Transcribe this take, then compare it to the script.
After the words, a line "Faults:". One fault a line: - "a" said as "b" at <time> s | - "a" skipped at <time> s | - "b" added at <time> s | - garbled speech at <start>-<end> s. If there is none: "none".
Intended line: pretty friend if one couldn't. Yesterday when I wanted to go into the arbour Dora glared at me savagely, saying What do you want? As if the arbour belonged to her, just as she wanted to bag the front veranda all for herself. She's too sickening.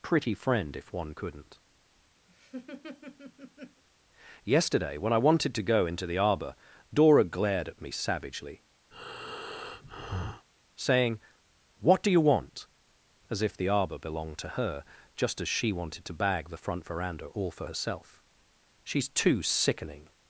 pretty friend if one couldn't. Yesterday when I wanted to go into the arbour Dora glared at me savagely, saying What do you want? As if the arbour belonged to her, just as she wanted to bag the front veranda all for herself. She's too sickening.
Faults:
none